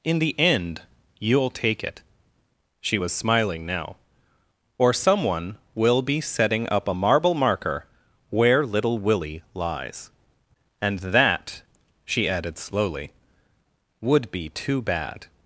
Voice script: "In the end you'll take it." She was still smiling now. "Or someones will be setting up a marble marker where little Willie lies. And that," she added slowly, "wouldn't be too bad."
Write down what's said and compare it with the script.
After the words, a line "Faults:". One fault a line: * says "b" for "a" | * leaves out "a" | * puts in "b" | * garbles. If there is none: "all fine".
"In the end you'll take it." She was smiling now. "Or someone will be setting up a marble marker where little Willie lies. And that," she added slowly, "would be too bad."
Faults:
* leaves out "still"
* says "someone" for "someones"
* says "would" for "wouldn't"